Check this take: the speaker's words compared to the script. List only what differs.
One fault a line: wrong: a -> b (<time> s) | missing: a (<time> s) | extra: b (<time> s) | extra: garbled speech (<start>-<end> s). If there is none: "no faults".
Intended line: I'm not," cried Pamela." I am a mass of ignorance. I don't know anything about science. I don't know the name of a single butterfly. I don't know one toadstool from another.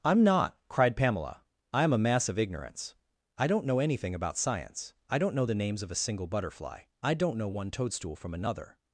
wrong: name -> names (5.5 s)